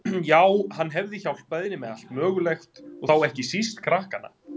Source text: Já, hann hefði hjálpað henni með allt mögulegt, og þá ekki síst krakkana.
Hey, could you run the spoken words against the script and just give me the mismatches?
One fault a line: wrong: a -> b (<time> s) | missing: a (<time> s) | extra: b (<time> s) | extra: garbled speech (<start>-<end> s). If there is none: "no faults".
no faults